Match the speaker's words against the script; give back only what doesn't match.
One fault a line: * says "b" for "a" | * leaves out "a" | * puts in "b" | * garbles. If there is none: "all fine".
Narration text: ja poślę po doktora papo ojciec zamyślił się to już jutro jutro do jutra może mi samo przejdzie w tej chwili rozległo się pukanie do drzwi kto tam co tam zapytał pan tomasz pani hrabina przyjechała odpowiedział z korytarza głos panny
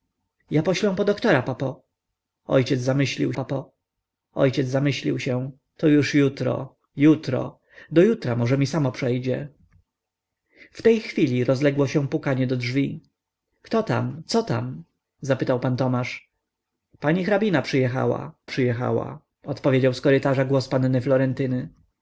* puts in "papo ojciec zamyślił"
* puts in "przyjechała"